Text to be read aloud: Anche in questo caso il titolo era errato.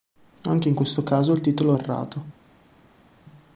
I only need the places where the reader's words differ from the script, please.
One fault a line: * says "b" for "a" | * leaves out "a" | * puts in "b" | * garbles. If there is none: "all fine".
* leaves out "era"